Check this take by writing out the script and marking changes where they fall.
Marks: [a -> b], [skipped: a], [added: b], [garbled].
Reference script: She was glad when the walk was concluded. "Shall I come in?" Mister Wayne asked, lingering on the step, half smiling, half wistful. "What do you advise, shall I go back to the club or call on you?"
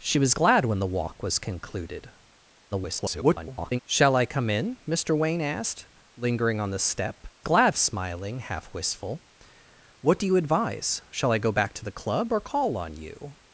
She was glad when the walk was concluded. [garbled] "Shall I come in?" Mister Wayne asked, lingering on the step, [half -> glad] smiling, half wistful. "What do you advise, shall I go back to the club or call on you?"